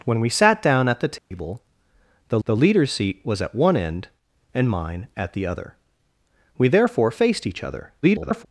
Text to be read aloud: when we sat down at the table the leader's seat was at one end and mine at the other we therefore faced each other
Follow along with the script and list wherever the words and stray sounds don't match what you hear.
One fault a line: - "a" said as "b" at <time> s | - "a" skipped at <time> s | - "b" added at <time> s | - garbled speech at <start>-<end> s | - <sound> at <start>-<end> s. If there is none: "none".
- dropout at 1.2-1.3 s
- "the" added at 2.5 s
- garbled speech at 8.0-8.5 s